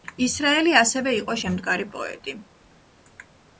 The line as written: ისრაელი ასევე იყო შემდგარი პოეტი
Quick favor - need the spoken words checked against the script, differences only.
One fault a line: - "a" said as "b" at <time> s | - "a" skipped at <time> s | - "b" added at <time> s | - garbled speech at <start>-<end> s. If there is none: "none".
none